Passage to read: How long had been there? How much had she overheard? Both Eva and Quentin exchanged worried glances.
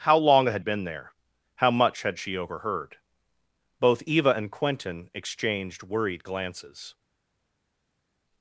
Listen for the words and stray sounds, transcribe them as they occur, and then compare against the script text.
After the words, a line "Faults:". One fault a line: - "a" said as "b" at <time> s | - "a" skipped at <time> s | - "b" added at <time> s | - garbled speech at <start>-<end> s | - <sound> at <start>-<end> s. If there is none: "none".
How long had been there? How much had she overheard? Both Eva and Quentin exchanged worried glances.
Faults:
none